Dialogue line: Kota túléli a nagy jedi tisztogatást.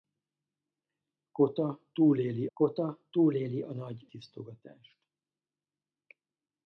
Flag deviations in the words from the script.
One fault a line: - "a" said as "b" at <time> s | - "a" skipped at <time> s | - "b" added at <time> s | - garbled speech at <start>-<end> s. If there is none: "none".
- "kota túléli" added at 2.5 s
- "jedi" skipped at 4.1 s